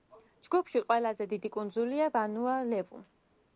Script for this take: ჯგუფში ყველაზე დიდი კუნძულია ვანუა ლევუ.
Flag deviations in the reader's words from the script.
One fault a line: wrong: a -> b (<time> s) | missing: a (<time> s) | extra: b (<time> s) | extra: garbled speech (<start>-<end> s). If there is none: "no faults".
no faults